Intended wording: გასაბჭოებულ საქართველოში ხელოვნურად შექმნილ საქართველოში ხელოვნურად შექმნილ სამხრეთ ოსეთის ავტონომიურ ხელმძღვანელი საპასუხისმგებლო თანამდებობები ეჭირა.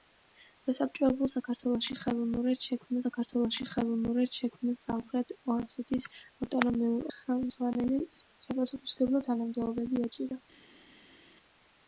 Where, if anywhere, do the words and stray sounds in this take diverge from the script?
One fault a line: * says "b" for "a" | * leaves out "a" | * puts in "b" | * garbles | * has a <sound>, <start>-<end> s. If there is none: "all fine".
all fine